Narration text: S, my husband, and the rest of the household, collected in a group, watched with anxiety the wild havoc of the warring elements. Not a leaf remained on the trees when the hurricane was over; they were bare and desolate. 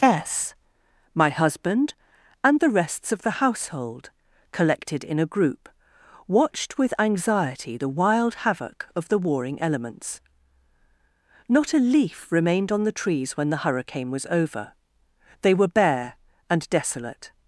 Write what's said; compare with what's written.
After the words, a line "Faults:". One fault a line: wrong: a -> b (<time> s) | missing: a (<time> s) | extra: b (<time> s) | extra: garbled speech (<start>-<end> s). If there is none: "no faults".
S, my husband, and the rests of the household, collected in a group, watched with anxiety the wild havoc of the warring elements. Not a leaf remained on the trees when the hurricane was over; they were bare and desolate.
Faults:
wrong: rest -> rests (2.7 s)